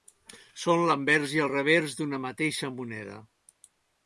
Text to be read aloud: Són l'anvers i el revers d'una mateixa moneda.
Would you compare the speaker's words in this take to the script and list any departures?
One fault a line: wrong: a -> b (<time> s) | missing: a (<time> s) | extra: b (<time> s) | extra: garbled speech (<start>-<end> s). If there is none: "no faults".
no faults